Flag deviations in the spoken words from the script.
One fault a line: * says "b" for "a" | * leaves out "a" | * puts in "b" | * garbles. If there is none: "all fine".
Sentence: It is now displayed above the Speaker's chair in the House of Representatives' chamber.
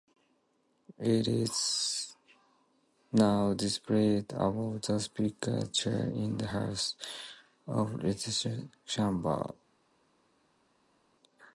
all fine